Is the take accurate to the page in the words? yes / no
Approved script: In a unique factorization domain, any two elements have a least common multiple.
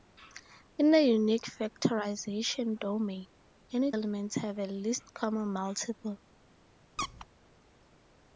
no